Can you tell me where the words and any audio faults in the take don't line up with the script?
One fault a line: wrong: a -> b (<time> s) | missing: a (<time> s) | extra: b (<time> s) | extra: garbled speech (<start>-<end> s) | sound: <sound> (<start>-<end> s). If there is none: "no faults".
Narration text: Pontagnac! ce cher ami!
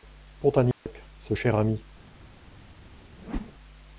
sound: dropout (0.7-0.9 s)
sound: whoosh (3.2-3.5 s)